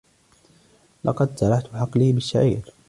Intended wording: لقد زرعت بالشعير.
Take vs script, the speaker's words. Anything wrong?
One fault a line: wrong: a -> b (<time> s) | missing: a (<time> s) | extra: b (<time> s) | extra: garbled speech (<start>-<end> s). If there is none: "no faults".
extra: حقلي (1.7 s)